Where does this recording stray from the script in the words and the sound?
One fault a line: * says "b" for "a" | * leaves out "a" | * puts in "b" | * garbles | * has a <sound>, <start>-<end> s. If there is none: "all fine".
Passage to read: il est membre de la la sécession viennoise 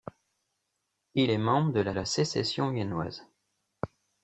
all fine